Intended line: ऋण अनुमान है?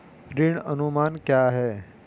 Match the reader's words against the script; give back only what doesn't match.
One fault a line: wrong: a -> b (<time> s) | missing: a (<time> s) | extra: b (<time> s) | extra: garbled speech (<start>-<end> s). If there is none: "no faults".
extra: क्या (1.1 s)